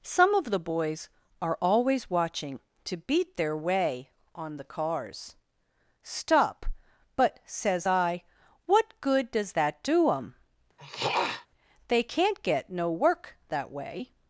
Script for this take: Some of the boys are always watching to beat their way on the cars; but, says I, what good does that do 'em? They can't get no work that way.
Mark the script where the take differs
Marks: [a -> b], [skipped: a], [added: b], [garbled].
Some of the boys are always watching to beat their way on the cars; [added: stop] but, says I, what good does that do 'em? They can't get no work that way.